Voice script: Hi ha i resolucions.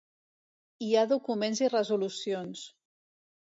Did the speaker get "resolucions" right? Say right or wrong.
right